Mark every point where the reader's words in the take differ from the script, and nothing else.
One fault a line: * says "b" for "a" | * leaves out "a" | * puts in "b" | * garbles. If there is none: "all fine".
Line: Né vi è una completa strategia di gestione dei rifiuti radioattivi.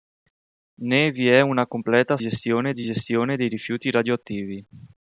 * says "gestione" for "strategia"